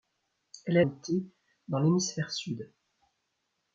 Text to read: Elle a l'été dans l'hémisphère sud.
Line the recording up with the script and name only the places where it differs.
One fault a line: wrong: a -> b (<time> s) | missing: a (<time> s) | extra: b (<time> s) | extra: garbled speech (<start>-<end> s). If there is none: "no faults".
no faults